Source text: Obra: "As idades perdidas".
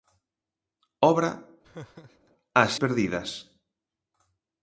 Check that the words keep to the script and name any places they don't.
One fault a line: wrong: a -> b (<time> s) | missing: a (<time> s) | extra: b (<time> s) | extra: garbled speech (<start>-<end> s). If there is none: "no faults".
missing: idades (2.7 s)